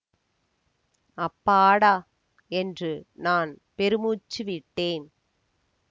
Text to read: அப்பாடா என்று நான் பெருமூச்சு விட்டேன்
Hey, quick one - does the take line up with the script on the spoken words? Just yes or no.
yes